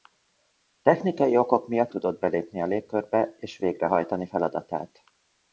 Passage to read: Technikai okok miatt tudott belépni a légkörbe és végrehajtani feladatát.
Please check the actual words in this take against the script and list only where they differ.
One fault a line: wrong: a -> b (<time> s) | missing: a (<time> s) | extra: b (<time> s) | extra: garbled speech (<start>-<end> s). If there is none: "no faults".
no faults